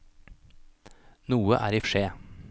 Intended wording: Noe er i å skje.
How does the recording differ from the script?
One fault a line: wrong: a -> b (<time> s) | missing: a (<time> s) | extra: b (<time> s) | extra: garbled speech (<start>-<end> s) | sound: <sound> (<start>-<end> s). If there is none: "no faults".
no faults